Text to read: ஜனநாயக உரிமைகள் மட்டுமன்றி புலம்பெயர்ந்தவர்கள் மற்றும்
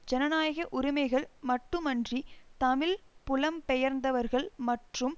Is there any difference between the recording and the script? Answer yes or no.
yes